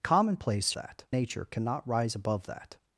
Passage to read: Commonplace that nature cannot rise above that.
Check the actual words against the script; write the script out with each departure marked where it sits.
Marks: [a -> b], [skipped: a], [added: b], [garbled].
Commonplace that nature cannot rise above that.